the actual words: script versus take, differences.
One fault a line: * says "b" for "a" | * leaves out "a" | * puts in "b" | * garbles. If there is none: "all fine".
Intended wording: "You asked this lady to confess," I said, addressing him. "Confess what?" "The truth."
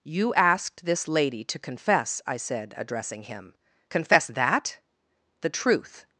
* says "that" for "what"